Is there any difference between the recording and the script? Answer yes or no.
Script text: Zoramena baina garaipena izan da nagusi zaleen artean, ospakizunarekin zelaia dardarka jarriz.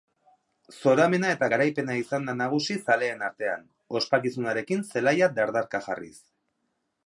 yes